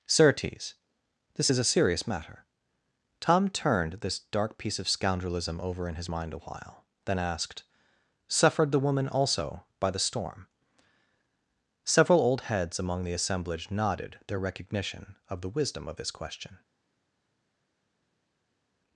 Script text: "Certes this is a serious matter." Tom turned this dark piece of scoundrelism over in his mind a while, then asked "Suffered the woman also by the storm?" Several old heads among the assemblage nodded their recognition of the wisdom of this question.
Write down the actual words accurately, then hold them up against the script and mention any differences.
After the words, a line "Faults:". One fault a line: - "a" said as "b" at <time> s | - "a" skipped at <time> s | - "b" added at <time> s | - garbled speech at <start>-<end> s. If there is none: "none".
"Certes this is a serious matter." Tom turned this dark piece of scoundrelism over in his mind a while, then asked "Suffered the woman also by the storm?" Several old heads among the assemblage nodded their recognition of the wisdom of this question.
Faults:
none